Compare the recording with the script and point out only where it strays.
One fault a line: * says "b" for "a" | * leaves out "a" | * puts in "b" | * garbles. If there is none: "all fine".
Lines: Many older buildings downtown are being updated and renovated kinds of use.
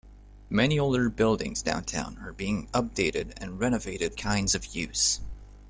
all fine